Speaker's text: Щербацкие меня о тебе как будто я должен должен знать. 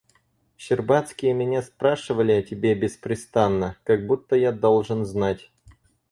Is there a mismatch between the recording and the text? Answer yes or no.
yes